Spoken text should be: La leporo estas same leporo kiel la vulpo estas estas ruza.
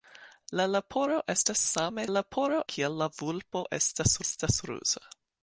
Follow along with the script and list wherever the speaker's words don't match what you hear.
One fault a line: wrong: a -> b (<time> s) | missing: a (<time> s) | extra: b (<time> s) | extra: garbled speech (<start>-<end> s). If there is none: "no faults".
no faults